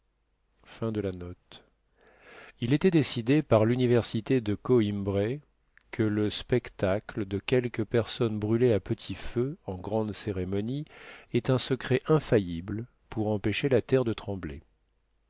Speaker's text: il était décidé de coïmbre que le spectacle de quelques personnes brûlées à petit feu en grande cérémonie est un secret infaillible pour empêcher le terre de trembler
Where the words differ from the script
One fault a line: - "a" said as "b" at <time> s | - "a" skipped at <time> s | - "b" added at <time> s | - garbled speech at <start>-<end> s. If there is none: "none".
- "par l'université" added at 3.4 s
- "le" said as "la" at 13.7 s